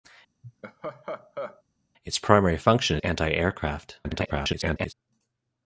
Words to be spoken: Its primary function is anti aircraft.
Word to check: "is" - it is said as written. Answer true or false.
false